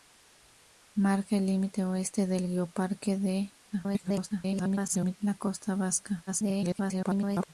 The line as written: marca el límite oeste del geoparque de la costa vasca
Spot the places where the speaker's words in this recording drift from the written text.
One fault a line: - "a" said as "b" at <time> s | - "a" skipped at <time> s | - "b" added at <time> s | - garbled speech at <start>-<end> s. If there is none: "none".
- garbled speech at 3.7-5.2 s
- garbled speech at 6.3-7.5 s